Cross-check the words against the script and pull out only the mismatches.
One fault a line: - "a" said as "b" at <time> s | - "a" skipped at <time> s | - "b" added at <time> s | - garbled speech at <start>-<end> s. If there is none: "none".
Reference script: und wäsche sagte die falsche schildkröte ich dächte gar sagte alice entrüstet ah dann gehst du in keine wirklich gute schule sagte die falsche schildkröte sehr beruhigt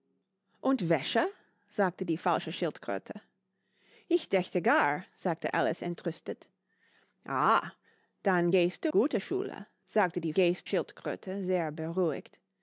- "in keine wirklich" skipped at 8.9 s
- "falsche" said as "gehst" at 10.3 s